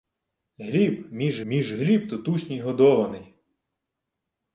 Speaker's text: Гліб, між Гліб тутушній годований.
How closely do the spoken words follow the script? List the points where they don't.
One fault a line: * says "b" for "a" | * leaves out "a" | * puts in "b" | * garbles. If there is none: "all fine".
* puts in "між"